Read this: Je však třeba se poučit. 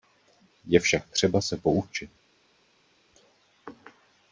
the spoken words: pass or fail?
pass